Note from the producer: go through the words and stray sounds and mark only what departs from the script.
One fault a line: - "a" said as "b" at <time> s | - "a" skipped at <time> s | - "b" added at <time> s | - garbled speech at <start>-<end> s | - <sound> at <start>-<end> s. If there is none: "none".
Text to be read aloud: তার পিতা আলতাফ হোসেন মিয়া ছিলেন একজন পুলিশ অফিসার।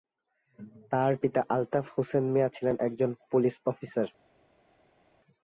none